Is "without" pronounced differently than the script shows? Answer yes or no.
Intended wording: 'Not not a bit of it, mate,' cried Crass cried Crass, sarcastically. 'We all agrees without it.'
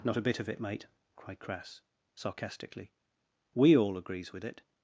yes